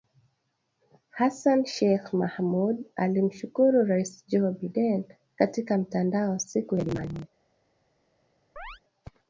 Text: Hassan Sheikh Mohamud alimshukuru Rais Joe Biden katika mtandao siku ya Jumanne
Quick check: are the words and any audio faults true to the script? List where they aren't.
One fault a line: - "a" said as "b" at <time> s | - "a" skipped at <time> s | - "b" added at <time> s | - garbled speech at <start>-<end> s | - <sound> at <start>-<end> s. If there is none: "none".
- chirp at 8.6-8.8 s